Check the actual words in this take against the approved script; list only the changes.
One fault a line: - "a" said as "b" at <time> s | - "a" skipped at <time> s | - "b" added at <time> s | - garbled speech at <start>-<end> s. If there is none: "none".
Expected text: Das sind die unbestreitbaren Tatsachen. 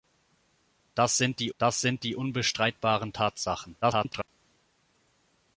- "das sind die" added at 1.6 s
- garbled speech at 3.8-4.3 s